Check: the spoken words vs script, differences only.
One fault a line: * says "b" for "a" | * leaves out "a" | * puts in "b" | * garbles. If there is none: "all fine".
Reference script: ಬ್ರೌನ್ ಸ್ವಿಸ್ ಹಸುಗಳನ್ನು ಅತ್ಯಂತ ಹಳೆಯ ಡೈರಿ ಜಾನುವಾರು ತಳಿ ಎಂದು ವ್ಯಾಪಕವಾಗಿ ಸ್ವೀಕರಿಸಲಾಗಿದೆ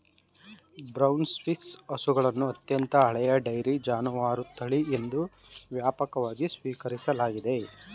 all fine